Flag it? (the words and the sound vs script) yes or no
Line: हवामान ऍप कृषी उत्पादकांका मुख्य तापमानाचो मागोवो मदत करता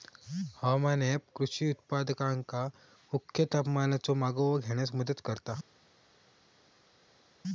yes